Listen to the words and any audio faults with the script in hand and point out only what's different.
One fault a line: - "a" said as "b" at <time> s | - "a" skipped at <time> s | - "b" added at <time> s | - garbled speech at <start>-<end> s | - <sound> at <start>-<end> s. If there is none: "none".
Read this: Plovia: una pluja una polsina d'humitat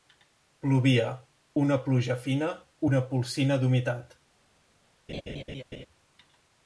- "fina" added at 2.3 s
- laugh at 5.1-5.9 s